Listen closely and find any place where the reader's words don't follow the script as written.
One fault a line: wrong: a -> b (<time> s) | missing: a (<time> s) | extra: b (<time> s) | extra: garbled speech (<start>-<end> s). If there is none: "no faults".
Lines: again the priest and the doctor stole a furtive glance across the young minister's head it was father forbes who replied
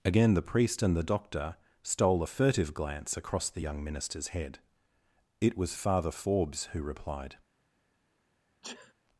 no faults